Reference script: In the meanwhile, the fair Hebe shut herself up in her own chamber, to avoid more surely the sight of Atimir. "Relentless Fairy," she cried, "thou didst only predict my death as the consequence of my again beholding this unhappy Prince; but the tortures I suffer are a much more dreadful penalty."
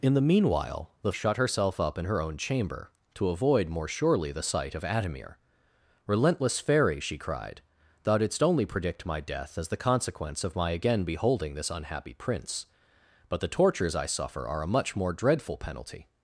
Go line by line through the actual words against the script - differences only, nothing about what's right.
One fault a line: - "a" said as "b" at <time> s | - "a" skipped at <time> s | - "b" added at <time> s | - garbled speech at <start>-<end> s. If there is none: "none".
- "fair Hebe" skipped at 1.1 s